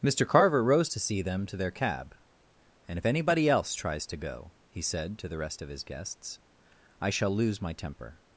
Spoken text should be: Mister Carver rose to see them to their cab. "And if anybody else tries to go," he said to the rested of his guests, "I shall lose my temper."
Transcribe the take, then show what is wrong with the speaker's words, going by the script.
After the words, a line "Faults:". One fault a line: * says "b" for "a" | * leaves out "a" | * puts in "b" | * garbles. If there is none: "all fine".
Mister Carver rose to see them to their cab. "And if anybody else tries to go," he said to the rest of his guests, "I shall lose my temper."
Faults:
* says "rest" for "rested"